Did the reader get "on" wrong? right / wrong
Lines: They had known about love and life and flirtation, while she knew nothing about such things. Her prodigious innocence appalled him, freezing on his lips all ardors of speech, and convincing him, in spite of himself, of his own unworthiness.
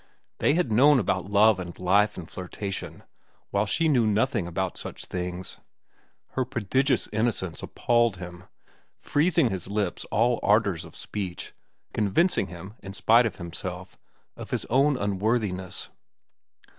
wrong